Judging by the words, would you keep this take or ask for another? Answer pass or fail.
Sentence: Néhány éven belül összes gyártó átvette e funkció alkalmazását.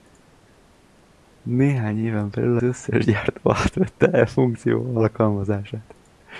pass